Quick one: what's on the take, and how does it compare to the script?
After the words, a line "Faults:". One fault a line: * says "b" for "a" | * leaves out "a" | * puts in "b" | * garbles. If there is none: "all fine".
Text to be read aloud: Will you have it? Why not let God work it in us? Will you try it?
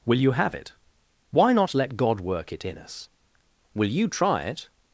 Will you have it? Why not let God work it in us? Will you try it?
Faults:
all fine